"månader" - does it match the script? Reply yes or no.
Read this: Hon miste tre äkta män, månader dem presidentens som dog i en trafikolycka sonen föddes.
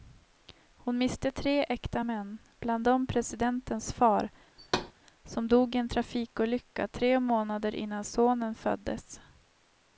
no